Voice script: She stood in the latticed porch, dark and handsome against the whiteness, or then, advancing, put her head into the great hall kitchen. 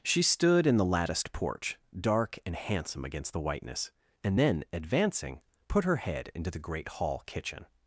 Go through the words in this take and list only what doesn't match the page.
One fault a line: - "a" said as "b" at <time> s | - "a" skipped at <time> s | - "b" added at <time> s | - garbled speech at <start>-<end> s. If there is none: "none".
- "or" said as "and" at 4.2 s